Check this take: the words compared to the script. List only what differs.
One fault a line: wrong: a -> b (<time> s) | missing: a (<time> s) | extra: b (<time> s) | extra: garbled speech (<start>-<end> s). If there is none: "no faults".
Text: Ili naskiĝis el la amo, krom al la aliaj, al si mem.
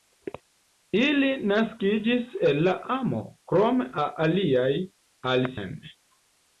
missing: al (3.9 s)
missing: si (5.5 s)